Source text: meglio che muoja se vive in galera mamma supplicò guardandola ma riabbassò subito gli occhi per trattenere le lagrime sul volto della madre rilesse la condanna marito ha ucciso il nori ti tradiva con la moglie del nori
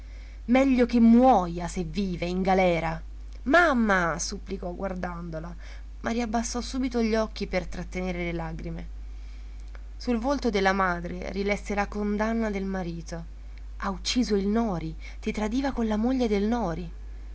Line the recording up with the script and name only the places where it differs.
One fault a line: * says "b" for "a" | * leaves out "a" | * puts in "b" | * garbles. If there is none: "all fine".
* puts in "del"